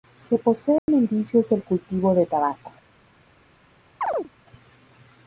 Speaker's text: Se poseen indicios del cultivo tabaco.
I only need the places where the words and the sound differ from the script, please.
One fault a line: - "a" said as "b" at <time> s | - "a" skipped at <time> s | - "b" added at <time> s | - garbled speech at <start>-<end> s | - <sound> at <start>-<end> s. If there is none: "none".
- dropout at 0.8-0.9 s
- "de" added at 2.2 s
- chirp at 4.0-4.3 s